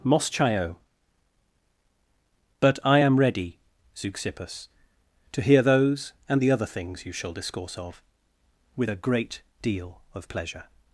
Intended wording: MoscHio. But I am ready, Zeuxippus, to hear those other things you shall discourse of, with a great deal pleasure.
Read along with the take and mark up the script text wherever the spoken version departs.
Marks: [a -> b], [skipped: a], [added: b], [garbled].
MoscHio. But I am ready, Zeuxippus, to hear those [added: and the] other things you shall discourse of, with a great deal [added: of] pleasure.